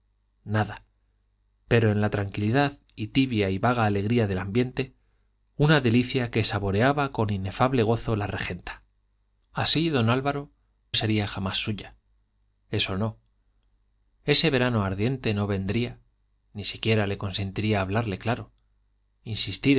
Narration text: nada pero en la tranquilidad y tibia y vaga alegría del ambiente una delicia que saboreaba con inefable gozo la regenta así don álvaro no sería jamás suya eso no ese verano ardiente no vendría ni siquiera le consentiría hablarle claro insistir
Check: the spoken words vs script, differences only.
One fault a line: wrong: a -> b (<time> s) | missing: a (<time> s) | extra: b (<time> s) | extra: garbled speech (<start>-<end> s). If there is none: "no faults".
missing: no (10.5 s)